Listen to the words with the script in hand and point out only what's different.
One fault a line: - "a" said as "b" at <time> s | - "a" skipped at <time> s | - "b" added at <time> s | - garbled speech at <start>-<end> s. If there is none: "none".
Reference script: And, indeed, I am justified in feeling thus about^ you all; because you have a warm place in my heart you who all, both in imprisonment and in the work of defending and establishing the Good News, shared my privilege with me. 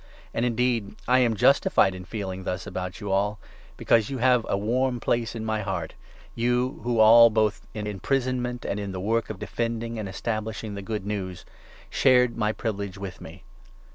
none